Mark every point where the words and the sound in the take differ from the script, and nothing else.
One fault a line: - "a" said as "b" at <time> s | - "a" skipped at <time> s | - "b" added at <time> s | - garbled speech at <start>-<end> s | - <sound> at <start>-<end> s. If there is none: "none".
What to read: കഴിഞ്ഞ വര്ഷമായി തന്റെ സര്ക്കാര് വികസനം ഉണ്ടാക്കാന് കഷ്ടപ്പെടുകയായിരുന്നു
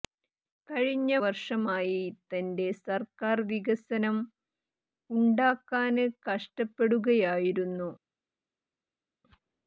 none